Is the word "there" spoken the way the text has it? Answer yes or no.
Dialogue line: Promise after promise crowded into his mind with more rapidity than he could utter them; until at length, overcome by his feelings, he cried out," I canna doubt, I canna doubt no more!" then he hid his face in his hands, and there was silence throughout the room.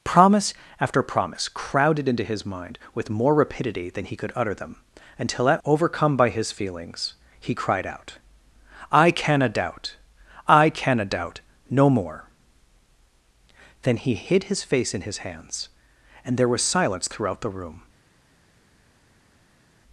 yes